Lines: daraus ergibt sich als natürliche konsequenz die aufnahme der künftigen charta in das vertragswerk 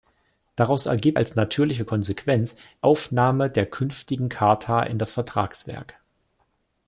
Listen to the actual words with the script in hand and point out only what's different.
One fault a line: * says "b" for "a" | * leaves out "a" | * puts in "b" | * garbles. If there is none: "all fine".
* leaves out "sich"
* leaves out "die"